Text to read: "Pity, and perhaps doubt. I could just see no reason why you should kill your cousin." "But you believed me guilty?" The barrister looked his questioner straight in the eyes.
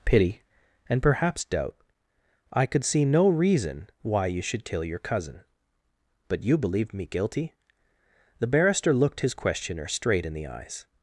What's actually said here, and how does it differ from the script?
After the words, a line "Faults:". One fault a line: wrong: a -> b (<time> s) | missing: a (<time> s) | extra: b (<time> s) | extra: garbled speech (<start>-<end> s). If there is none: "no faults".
"Pity, and perhaps doubt. I could see no reason why you should kill your cousin." "But you believed me guilty?" The barrister looked his questioner straight in the eyes.
Faults:
missing: just (2.8 s)